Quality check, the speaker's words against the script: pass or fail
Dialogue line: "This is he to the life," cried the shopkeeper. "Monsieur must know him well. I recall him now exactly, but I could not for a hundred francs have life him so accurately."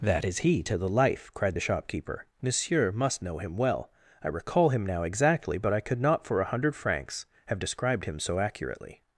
fail